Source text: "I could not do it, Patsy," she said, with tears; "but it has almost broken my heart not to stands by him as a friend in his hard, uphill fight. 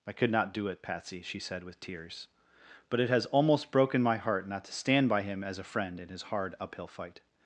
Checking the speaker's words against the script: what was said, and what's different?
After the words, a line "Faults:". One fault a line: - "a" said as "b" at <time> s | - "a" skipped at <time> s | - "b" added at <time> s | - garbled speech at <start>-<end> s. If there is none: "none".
"I could not do it, Patsy," she said, with tears; "but it has almost broken my heart not to stand by him as a friend in his hard, uphill fight.
Faults:
- "stands" said as "stand" at 4.7 s